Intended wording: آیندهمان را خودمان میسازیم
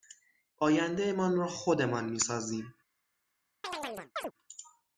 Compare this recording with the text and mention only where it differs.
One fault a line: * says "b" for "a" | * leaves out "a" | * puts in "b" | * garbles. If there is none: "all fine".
all fine